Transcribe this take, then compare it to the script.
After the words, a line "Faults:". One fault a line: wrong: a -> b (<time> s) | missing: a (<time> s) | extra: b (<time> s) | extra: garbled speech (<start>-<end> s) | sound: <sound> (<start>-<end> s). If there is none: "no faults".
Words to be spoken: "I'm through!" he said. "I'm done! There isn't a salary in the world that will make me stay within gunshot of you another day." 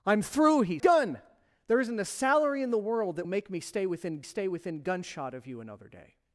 "I'm through!" he done! There isn't a salary in the world that make me stay within stay within gunshot of you another day."
Faults:
missing: said I'm (0.8 s)
missing: will (3.3 s)
extra: stay within (4.2 s)